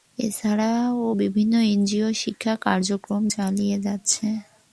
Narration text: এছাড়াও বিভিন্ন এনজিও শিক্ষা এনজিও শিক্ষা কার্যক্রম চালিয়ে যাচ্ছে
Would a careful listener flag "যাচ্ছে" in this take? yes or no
no